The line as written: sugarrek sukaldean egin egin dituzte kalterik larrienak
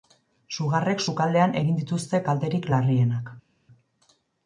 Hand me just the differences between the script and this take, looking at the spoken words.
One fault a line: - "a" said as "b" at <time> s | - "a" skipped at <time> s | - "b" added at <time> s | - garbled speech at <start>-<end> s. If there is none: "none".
- "egin" skipped at 1.8 s